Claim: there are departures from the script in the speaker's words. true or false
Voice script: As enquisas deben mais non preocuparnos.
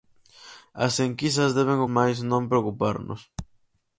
false